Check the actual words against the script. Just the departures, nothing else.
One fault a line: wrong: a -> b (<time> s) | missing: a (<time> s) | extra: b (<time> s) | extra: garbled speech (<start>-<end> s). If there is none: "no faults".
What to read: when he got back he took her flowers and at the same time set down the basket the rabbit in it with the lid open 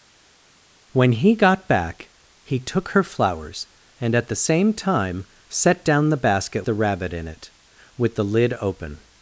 no faults